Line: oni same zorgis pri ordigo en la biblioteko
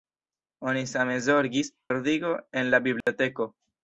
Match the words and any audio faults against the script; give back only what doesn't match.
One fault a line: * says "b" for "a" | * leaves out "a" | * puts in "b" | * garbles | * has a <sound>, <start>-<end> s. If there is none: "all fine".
* leaves out "pri"
* has a dropout, 3.0-3.1 s